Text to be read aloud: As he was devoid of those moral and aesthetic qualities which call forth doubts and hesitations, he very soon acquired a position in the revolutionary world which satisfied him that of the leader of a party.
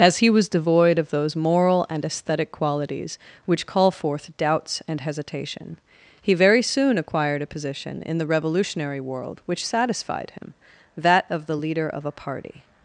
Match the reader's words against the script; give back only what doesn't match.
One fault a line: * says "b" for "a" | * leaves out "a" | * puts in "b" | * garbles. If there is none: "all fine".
* says "hesitation" for "hesitations"